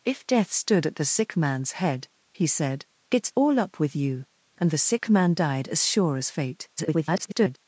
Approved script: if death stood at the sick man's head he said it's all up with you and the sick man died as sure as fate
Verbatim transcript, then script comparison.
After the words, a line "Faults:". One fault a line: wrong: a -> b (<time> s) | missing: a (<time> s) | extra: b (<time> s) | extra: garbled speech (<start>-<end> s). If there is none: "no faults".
if death stood at the sick man's head he said it's all up with you and the sick man died as sure as fate [garbled]
Faults:
extra: garbled speech (6.8-7.6 s)